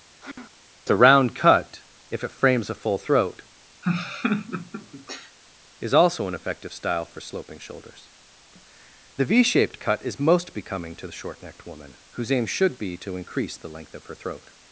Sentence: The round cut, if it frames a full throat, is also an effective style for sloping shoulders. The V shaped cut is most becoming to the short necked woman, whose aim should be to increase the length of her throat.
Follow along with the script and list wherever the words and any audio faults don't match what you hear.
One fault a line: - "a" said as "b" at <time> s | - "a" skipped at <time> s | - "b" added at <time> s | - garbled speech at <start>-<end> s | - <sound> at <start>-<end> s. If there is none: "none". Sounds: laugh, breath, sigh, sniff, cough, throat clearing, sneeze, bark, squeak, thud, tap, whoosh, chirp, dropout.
- sigh at 0.2-0.6 s
- laugh at 3.8-5.4 s